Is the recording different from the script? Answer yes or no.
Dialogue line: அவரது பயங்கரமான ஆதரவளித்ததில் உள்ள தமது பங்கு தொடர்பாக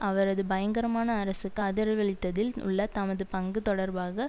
yes